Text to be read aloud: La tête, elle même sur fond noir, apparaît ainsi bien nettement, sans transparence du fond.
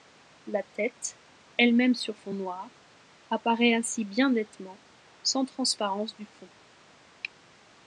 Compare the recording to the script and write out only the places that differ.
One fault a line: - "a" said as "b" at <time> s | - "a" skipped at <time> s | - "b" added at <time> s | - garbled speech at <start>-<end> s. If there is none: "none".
none